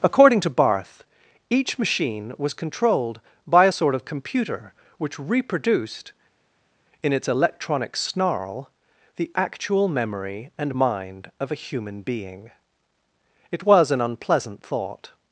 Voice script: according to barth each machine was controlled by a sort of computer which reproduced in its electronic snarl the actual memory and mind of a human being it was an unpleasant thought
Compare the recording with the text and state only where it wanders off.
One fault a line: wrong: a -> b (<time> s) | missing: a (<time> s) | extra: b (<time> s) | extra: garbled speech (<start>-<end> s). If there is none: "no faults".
no faults